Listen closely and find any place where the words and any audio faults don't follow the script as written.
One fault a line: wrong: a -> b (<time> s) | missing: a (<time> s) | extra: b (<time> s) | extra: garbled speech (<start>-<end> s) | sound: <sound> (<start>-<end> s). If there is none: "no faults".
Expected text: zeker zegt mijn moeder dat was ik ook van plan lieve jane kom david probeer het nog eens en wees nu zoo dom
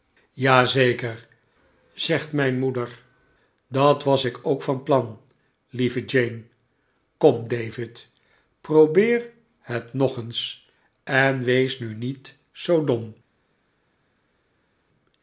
extra: niet (11.9 s)